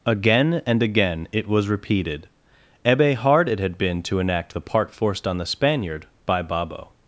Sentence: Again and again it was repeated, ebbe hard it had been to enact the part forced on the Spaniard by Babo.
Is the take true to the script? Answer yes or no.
yes